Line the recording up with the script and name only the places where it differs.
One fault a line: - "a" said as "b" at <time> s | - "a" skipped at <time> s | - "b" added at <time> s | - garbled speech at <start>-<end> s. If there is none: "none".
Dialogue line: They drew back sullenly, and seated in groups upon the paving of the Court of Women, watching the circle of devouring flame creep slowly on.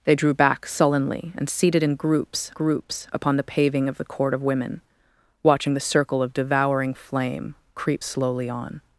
- "groups" added at 2.5 s